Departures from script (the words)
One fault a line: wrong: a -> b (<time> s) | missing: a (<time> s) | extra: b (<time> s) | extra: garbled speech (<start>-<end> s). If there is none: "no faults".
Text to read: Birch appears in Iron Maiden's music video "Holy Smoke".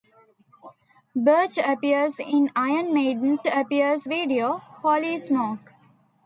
wrong: music -> appears (3.5 s)